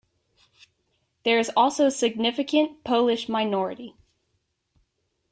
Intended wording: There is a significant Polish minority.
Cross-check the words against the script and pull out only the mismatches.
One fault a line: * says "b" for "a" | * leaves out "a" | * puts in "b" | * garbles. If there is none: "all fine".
* puts in "also"